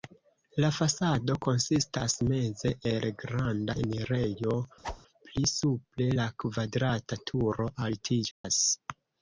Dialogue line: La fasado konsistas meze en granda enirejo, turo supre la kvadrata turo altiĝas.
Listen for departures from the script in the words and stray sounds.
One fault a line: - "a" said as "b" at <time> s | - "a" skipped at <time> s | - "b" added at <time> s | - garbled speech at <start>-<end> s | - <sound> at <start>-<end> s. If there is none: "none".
- "en" said as "el" at 2.9 s
- whoosh at 4.8-5.0 s
- "turo" said as "pli" at 5.3 s
- dropout at 8.3-8.4 s